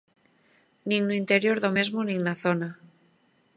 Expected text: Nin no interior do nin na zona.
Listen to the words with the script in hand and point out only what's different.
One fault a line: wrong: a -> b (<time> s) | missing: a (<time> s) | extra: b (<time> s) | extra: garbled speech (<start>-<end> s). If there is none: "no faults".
extra: mesmo (1.8 s)